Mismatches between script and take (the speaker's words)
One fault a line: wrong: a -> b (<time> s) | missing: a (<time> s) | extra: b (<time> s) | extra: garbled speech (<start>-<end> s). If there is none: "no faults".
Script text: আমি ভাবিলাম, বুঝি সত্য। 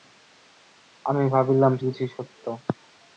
no faults